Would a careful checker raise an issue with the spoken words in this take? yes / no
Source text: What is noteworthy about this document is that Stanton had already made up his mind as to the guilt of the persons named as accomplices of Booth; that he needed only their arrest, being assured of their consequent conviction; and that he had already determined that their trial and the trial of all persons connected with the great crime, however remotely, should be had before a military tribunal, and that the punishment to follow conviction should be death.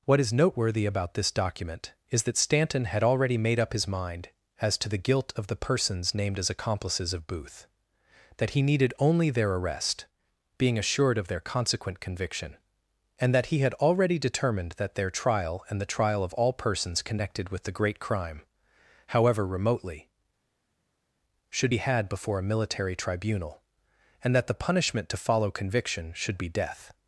no